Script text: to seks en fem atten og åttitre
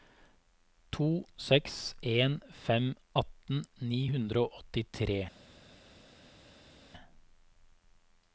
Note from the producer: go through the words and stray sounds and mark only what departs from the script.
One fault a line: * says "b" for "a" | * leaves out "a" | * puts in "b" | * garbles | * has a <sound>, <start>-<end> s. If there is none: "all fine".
* puts in "ni hundre"